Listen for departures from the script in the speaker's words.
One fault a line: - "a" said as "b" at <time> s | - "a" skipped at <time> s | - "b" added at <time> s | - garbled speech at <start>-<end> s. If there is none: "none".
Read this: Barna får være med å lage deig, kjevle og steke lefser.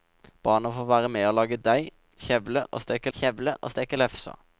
- "kjevle og steke" added at 3.2 s